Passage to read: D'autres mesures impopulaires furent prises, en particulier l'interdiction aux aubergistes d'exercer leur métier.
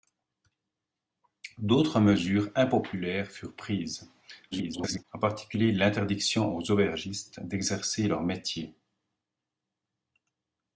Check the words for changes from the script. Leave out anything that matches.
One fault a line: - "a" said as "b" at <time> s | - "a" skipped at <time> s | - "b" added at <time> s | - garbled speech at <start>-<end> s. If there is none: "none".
- garbled speech at 4.5-5.0 s